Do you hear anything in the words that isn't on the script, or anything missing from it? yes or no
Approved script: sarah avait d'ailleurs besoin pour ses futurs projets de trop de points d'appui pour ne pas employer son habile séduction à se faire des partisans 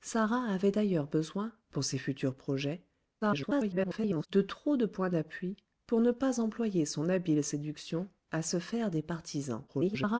yes